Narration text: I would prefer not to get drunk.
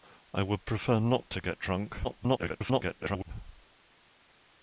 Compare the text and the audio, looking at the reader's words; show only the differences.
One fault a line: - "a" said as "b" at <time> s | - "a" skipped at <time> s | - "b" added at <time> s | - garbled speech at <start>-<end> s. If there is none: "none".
- garbled speech at 2.0-3.3 s